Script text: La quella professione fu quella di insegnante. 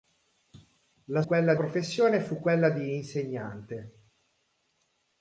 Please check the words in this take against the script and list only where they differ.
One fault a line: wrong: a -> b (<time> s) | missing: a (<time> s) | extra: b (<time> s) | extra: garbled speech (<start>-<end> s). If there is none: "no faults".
no faults